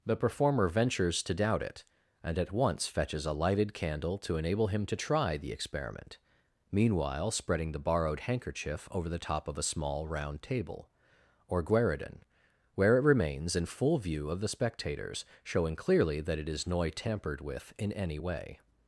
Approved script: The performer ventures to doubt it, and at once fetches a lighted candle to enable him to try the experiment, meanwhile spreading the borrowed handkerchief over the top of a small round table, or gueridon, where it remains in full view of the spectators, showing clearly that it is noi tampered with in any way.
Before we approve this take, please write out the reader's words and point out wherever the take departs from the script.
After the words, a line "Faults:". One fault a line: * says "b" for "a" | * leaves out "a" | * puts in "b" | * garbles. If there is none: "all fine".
The performer ventures to doubt it, and at once fetches a lighted candle to enable him to try the experiment, meanwhile spreading the borrowed handkerchief over the top of a small round table, or gueridon, where it remains in full view of the spectators, showing clearly that it is noi tampered with in any way.
Faults:
all fine